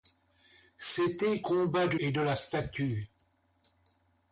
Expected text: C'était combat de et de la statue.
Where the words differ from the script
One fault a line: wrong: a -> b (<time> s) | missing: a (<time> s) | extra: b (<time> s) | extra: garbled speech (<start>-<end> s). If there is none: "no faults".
no faults